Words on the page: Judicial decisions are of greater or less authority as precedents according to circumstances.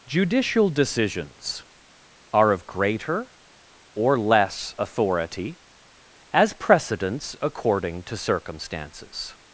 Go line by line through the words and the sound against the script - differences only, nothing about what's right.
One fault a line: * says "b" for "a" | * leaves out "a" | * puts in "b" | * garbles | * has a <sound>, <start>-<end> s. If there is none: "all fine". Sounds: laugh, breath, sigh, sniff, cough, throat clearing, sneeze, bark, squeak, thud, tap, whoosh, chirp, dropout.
all fine